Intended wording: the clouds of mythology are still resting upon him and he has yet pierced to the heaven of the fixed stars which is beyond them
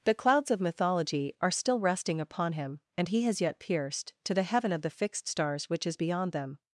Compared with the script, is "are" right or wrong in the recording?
right